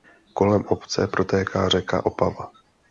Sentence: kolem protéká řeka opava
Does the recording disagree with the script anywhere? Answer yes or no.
yes